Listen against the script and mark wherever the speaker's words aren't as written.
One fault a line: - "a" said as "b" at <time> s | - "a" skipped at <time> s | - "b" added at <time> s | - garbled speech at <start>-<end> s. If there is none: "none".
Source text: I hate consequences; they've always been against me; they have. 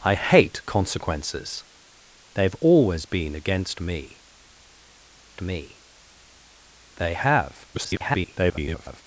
- "me" added at 5.4 s
- garbled speech at 7.7-9.0 s